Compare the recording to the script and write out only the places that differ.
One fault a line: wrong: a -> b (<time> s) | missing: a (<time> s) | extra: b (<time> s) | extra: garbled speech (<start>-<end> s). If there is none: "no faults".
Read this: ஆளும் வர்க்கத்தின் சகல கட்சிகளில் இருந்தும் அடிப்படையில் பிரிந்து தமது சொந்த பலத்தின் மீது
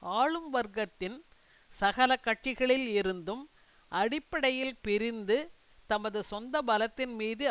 no faults